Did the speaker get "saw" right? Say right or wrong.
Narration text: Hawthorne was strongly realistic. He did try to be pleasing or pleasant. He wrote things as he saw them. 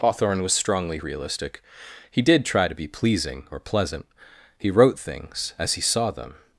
right